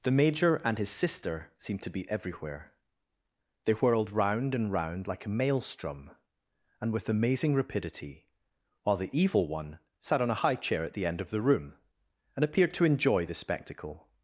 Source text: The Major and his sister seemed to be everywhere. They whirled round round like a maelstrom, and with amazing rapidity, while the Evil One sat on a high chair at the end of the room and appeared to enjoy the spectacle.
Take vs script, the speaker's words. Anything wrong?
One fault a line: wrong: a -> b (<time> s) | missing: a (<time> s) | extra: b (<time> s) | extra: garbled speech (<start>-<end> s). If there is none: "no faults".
extra: and (4.5 s)